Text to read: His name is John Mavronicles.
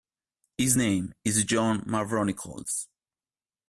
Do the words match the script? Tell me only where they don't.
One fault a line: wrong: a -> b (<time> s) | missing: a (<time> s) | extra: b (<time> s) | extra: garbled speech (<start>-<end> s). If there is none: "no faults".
no faults